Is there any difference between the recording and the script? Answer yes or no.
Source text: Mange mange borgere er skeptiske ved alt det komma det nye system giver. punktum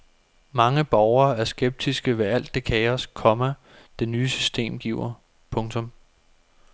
yes